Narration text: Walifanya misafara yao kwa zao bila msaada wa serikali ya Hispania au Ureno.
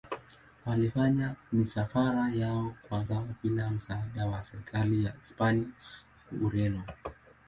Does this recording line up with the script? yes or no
yes